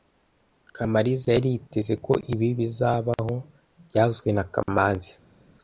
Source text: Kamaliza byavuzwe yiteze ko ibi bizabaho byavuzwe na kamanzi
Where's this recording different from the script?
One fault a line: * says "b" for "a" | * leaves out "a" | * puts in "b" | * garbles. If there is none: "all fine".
* says "yari" for "byavuzwe"